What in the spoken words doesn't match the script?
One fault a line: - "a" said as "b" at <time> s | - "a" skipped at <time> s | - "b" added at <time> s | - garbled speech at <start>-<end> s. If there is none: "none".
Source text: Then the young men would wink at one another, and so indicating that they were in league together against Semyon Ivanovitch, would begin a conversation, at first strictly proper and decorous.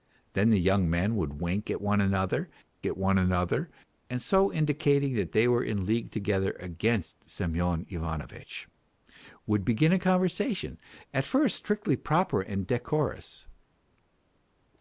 - "at one another" added at 2.8 s